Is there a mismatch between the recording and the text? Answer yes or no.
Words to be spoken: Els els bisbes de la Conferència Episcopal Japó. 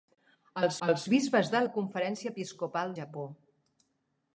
no